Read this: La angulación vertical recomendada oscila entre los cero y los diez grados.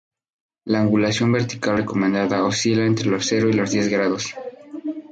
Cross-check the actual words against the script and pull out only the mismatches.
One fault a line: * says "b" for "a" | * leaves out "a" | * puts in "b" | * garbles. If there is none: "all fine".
all fine